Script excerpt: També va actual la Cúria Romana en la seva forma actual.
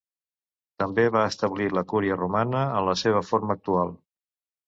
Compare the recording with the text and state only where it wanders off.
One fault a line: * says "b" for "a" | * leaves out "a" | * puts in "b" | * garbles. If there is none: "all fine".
* says "establir" for "actual"